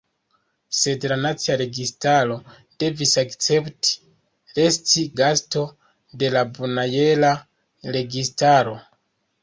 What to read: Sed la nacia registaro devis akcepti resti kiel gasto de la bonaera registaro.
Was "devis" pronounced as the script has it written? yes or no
yes